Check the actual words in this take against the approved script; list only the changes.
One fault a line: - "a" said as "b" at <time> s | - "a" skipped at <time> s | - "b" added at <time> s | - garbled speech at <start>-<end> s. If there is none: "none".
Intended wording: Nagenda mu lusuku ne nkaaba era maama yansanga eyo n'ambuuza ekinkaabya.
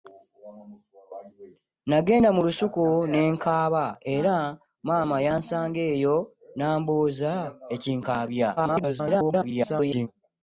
- garbled speech at 8.6-10.1 s